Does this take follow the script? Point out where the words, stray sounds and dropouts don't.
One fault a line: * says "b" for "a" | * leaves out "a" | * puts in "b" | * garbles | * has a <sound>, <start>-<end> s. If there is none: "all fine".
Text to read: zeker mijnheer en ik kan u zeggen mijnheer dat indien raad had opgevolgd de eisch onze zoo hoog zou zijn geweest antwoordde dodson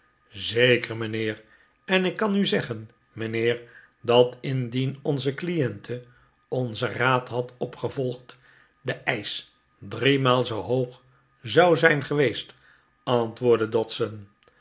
* puts in "onze cliente onzen"
* says "driemaal" for "onze"